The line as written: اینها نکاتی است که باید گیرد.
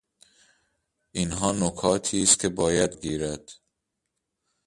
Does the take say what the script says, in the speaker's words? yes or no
yes